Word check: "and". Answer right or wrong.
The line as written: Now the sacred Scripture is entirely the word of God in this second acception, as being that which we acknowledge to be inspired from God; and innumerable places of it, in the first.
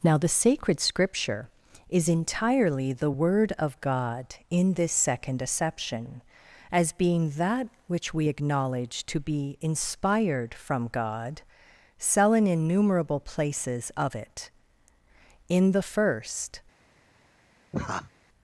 wrong